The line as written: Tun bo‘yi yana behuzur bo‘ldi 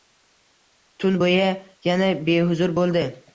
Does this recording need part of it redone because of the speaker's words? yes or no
no